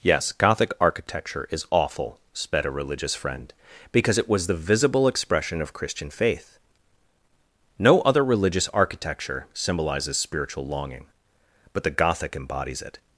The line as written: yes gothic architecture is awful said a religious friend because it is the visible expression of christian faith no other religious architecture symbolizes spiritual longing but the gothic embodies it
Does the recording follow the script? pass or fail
fail